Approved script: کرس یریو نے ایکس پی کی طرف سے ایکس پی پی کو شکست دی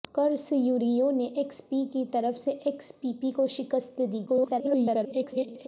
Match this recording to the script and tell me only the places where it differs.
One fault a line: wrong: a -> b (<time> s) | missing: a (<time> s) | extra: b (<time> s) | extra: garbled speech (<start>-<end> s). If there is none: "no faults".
extra: garbled speech (4.3-5.7 s)